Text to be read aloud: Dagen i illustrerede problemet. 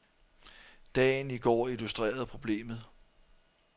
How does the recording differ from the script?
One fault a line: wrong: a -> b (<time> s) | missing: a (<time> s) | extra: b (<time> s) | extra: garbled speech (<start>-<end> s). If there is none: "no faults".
extra: går (1.4 s)